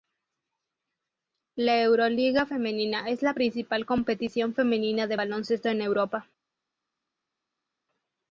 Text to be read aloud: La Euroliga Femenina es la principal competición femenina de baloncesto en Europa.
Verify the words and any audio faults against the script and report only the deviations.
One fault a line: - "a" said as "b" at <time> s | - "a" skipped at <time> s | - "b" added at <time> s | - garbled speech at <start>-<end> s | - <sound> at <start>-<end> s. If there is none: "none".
none